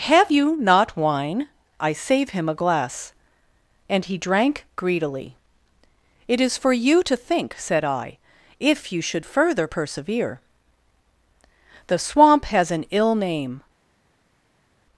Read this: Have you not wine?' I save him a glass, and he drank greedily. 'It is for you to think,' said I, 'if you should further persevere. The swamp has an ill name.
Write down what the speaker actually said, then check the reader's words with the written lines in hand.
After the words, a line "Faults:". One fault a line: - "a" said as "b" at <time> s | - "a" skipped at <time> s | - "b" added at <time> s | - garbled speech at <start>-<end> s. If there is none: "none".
Have you not wine?' I save him a glass, and he drank greedily. 'It is for you to think,' said I, 'if you should further persevere. The swamp has an ill name.
Faults:
none